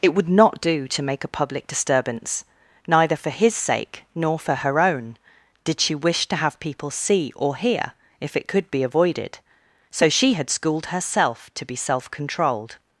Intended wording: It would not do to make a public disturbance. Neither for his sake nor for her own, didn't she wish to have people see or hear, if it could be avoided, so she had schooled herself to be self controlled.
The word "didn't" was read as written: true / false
false